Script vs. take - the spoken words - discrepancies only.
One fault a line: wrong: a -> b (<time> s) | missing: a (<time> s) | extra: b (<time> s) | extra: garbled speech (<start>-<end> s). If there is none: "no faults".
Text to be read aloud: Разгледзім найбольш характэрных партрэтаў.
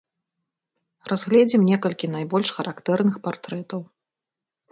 extra: некалькі (1.7 s)